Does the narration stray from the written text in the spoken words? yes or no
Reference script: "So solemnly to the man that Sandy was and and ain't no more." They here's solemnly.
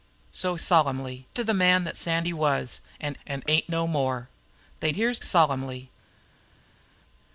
no